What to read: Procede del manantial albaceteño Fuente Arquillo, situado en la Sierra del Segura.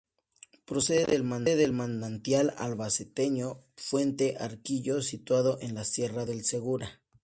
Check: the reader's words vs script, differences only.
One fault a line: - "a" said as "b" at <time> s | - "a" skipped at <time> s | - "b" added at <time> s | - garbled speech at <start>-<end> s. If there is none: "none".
none